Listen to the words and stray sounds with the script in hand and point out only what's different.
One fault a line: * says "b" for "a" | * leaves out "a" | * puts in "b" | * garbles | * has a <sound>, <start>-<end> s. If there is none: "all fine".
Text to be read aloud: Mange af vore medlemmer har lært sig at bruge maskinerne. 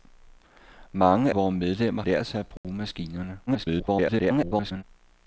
* leaves out "af"
* leaves out "har"
* has a dropout, 2.6-2.6 s
* garbles